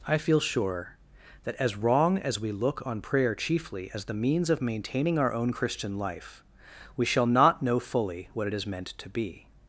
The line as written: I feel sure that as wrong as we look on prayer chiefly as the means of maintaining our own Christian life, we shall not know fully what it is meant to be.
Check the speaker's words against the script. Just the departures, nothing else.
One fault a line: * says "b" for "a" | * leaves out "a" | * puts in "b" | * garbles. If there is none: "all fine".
all fine